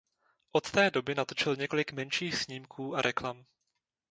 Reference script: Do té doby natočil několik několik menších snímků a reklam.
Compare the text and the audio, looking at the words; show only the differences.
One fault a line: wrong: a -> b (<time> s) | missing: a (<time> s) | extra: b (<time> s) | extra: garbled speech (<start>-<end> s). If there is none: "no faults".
wrong: Do -> Od (0.5 s)
missing: několik (1.9 s)